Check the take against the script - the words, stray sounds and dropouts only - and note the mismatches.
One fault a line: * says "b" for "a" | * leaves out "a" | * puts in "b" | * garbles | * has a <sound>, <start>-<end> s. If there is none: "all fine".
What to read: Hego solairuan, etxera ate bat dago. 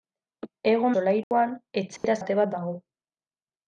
* has a dropout, 1.2-1.3 s
* has a dropout, 2.0-2.0 s